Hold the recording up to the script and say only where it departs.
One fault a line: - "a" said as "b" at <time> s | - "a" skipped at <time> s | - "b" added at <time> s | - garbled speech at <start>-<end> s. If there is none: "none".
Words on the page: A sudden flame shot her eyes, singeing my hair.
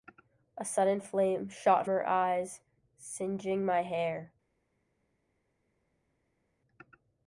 none